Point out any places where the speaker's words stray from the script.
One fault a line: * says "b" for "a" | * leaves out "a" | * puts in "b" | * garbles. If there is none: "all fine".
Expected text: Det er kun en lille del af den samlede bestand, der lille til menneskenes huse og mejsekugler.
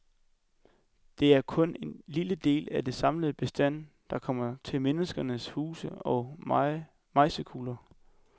* says "kommer" for "lille"